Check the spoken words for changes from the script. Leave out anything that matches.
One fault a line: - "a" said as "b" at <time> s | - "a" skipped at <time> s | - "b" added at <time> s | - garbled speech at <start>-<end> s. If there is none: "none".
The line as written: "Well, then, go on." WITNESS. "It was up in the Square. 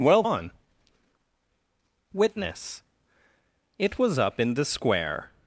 - "then go" skipped at 0.2 s